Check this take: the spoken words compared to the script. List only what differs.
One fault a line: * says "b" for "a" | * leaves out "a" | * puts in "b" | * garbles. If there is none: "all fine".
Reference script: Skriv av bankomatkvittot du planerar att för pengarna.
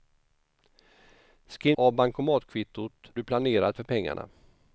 all fine